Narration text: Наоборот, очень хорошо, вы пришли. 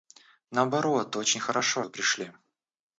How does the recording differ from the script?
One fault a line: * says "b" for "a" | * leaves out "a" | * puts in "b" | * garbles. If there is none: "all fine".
all fine